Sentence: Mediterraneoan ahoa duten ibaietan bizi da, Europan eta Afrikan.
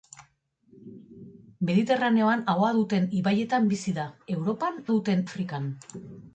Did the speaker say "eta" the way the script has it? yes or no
no